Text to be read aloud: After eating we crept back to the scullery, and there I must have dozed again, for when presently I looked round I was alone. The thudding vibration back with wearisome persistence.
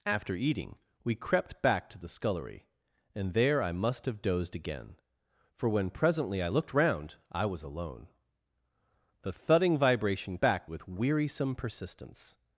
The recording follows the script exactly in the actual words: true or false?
true